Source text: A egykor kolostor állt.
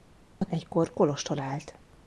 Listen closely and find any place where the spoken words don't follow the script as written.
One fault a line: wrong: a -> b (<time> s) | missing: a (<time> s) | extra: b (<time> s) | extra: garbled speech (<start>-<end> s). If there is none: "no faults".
no faults